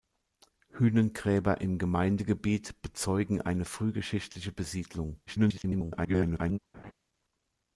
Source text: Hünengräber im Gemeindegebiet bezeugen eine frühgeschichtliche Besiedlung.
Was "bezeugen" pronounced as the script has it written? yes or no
yes